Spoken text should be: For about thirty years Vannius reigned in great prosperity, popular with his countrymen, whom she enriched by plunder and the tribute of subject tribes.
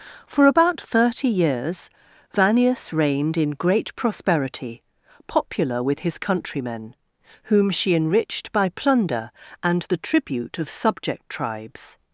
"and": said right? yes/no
yes